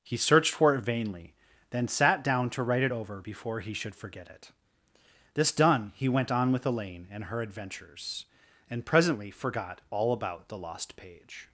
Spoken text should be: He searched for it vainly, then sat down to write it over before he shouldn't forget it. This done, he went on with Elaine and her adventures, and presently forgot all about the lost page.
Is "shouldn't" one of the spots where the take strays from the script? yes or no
yes